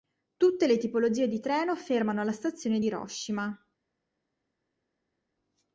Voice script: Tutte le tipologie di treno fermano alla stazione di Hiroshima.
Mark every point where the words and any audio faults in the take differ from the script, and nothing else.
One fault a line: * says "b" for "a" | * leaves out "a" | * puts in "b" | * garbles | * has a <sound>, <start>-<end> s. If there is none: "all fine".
* leaves out "di"